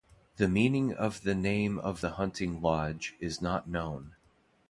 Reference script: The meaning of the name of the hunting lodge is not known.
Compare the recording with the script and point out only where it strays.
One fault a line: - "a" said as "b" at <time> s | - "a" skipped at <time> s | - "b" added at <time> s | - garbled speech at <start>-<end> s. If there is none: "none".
none